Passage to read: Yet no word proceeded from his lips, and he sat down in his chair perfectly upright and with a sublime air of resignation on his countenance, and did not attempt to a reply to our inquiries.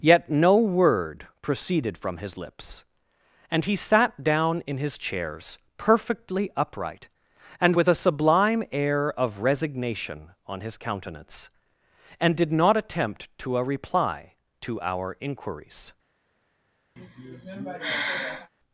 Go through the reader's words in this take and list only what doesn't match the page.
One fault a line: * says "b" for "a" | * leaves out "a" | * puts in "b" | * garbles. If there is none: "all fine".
* says "chairs" for "chair"